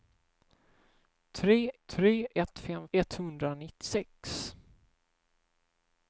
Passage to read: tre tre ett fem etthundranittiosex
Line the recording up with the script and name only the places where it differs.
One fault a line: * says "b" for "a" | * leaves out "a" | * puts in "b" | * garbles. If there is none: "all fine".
all fine